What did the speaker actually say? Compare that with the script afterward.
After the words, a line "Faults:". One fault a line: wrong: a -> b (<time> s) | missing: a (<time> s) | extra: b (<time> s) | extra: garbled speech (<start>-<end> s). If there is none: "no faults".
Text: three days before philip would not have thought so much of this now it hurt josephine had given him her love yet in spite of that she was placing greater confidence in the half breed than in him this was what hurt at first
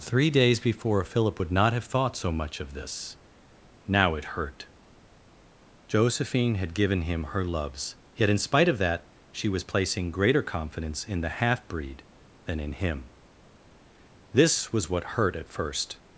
three days before philip would not have thought so much of this now it hurt josephine had given him her loves yet in spite of that she was placing greater confidence in the half breed than in him this was what hurt at first
Faults:
wrong: love -> loves (7.4 s)